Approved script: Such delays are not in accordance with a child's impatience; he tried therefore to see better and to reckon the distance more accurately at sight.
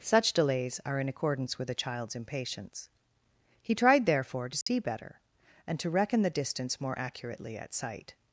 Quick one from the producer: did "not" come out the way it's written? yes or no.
no